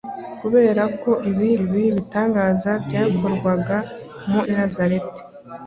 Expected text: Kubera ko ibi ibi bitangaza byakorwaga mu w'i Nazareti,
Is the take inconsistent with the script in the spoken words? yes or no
no